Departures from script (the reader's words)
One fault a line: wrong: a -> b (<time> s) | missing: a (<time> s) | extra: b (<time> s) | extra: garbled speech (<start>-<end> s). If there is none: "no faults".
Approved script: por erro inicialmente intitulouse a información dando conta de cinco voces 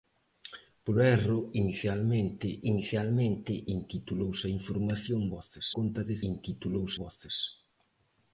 extra: inicialmente (2.7 s)
wrong: dando -> voces (5.3 s)
wrong: cinco -> intitulouse (6.3 s)